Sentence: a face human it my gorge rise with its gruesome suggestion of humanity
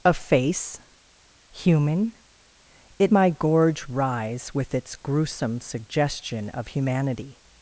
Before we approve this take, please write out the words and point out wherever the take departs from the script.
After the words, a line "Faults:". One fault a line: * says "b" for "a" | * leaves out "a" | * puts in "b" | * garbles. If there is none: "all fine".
a face human it my gorge rise with its gruesome suggestion of humanity
Faults:
all fine